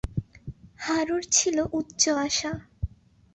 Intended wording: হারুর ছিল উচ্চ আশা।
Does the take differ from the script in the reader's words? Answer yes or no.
no